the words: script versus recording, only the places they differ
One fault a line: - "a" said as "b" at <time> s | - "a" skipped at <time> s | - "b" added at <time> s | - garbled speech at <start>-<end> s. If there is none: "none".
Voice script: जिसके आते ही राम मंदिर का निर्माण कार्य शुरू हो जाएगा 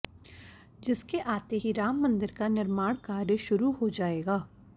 none